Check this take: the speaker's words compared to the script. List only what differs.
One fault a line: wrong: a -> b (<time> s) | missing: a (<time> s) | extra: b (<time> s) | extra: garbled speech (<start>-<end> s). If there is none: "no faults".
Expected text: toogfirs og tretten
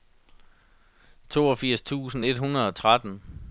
extra: tusind et hundrede (1.8 s)